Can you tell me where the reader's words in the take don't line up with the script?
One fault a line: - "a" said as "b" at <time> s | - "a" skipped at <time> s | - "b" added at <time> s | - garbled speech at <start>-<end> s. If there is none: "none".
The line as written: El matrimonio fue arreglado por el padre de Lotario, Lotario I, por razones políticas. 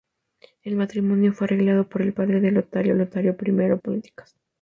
- "por razones" skipped at 3.8 s